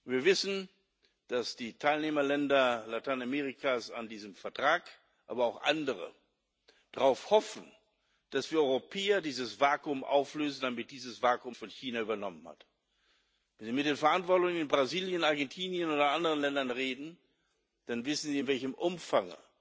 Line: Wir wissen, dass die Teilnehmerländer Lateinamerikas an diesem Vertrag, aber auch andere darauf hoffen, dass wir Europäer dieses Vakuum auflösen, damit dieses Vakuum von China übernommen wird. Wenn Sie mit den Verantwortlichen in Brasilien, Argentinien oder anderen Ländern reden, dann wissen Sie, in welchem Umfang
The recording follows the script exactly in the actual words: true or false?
true